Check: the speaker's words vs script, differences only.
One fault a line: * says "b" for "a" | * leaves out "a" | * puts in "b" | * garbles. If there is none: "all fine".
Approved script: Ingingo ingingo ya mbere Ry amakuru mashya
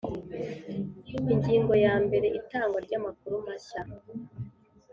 * leaves out "ingingo"
* puts in "Itangwa"